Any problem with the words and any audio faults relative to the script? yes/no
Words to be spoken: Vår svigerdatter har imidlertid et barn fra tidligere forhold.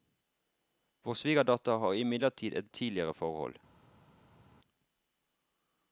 yes